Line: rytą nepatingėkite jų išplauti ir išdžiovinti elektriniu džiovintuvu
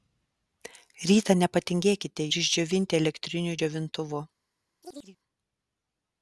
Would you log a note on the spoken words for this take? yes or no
yes